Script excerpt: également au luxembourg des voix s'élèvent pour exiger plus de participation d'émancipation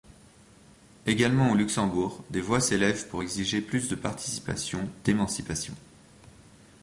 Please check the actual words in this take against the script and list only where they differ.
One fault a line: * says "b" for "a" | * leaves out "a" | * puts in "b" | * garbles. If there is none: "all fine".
all fine